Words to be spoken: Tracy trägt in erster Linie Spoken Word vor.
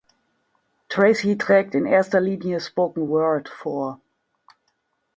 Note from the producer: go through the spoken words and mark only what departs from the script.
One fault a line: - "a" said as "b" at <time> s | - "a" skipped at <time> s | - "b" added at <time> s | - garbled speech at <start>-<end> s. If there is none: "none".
none